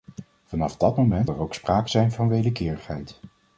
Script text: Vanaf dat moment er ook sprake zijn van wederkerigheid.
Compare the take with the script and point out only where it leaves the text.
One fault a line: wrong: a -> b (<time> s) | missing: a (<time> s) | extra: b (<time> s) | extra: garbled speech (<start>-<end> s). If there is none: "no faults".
no faults